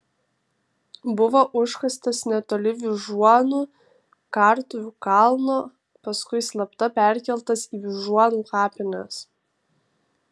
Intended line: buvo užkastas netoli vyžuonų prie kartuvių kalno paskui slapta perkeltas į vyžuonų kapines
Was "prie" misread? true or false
true